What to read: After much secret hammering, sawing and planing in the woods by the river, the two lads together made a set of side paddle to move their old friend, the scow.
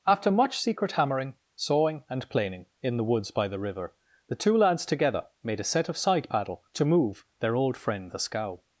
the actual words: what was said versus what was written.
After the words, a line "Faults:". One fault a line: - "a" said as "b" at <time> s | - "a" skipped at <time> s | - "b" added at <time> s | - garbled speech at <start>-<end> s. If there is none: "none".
After much secret hammering, sawing and planing in the woods by the river, the two lads together made a set of side paddle to move their old friend, the scow.
Faults:
none